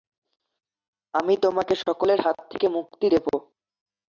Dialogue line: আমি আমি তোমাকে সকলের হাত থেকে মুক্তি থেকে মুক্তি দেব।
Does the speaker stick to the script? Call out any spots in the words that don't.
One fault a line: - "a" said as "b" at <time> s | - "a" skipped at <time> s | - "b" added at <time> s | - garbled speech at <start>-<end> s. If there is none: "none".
- "আমি" skipped at 1.3 s
- "থেকে মুক্তি" skipped at 3.1 s